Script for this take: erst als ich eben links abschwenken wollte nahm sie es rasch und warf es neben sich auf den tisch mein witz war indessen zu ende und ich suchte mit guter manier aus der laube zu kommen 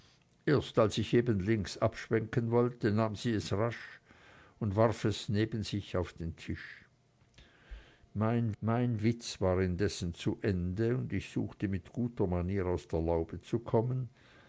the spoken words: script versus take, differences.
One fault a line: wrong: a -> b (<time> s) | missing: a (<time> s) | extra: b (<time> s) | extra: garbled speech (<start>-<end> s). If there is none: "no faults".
extra: mein (8.6 s)